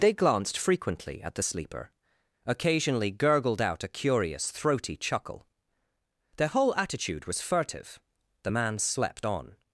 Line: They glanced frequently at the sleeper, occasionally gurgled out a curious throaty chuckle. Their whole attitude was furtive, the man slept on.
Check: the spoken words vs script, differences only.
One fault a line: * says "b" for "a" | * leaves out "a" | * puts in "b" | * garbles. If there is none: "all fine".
all fine